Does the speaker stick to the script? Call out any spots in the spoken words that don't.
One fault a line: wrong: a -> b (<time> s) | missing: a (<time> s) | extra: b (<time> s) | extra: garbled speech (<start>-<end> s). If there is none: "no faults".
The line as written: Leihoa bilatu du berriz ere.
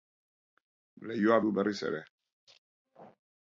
missing: bilatu (1.4 s)